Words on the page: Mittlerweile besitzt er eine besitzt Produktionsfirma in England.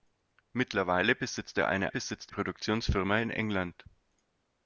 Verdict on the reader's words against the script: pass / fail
pass